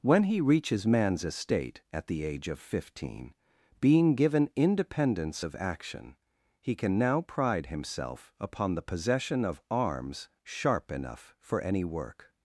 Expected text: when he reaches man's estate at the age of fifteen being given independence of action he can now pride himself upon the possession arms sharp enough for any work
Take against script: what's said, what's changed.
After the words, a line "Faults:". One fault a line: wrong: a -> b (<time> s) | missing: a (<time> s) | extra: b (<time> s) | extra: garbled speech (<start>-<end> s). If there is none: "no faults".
when he reaches man's estate at the age of fifteen being given independence of action he can now pride himself upon the possession of arms sharp enough for any work
Faults:
extra: of (9.5 s)